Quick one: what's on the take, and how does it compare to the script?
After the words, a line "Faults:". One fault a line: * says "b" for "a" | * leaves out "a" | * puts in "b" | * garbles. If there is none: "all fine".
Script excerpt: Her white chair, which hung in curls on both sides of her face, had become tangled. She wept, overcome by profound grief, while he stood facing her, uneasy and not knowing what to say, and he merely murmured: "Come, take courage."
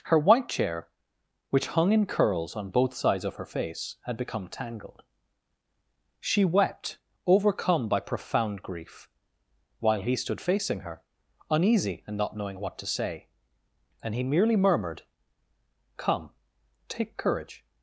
Her white chair, which hung in curls on both sides of her face, had become tangled. She wept, overcome by profound grief, while he stood facing her, uneasy and not knowing what to say, and he merely murmured: "Come, take courage."
Faults:
all fine